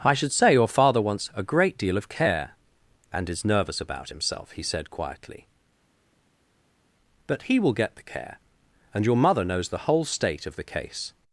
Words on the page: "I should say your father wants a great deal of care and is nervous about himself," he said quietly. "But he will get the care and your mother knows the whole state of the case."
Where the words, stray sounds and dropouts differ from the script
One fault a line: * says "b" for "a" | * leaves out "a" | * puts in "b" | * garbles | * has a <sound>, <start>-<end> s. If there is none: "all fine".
all fine